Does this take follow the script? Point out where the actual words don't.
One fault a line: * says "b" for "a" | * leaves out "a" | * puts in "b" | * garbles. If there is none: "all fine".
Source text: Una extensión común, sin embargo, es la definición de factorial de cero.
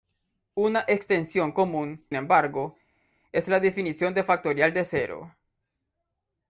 * leaves out "sin"